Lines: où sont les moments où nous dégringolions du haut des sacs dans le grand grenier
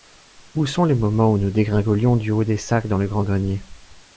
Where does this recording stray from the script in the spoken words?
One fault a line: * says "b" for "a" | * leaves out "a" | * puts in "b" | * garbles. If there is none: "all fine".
all fine